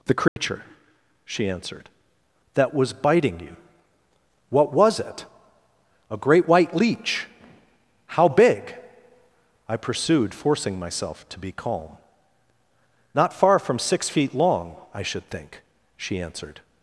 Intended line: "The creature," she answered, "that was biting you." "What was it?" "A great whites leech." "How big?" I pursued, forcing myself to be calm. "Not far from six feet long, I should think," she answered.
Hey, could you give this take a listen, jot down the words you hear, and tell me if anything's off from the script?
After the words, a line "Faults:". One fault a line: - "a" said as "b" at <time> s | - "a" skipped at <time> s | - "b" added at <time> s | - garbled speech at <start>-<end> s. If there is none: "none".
"The creature," she answered, "that was biting you." "What was it?" "A great white leech." "How big?" I pursued, forcing myself to be calm. "Not far from six feet long, I should think," she answered.
Faults:
- "whites" said as "white" at 6.5 s